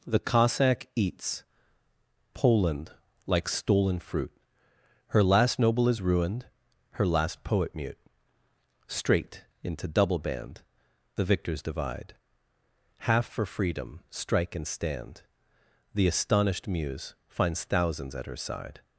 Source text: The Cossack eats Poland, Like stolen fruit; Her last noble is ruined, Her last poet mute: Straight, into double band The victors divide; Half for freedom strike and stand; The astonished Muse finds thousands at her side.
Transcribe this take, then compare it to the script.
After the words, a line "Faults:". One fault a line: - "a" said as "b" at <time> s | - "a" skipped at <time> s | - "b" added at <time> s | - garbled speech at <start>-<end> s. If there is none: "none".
The Cossack eats Poland, Like stolen fruit; Her last noble is ruined, Her last poet mute: Straight, into double band The victors divide; Half for freedom strike and stand; The astonished Muse finds thousands at her side.
Faults:
none